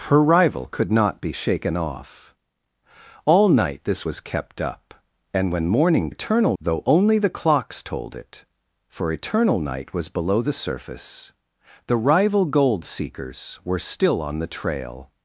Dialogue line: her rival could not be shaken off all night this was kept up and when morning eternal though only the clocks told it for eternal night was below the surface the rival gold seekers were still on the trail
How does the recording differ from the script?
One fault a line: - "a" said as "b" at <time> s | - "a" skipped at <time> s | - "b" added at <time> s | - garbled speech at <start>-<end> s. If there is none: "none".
none